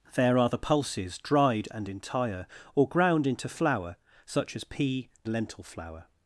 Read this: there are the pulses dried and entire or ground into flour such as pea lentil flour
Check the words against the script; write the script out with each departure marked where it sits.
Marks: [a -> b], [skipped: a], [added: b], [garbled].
there are the pulses dried and entire or ground into flour such as pea lentil flour